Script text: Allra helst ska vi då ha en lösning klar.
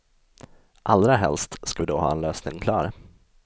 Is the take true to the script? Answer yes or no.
yes